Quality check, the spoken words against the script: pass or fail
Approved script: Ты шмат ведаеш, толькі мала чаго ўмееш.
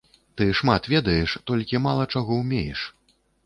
pass